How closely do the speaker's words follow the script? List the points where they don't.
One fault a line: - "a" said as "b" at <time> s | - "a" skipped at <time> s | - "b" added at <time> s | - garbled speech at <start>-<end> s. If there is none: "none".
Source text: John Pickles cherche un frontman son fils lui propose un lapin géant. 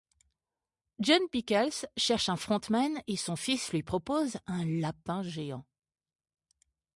- "et" added at 3.1 s